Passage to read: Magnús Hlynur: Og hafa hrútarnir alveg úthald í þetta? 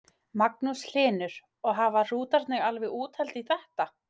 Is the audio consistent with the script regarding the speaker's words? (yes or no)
yes